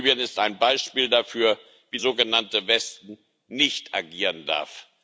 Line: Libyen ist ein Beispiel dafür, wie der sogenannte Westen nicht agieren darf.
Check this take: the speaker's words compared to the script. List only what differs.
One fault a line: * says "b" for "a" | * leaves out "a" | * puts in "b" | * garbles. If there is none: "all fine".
* leaves out "der"